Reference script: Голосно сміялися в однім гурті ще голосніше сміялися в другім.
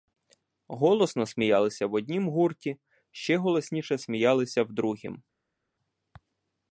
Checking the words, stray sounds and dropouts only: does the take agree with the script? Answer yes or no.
yes